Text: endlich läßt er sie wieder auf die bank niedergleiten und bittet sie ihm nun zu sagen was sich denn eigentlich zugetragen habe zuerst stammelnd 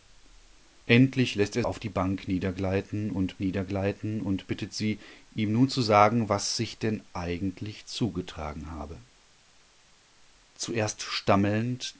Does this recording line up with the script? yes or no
no